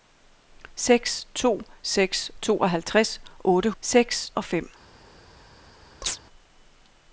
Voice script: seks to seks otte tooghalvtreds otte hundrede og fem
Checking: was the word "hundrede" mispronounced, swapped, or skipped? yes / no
yes